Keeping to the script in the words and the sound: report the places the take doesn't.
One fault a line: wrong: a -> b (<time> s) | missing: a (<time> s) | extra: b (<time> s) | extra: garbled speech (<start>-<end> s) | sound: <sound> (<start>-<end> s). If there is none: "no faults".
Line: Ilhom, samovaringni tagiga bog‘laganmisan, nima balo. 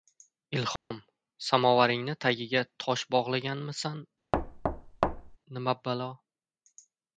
sound: dropout (0.8-0.9 s)
extra: tosh (2.9 s)
sound: thud (4.3-5.4 s)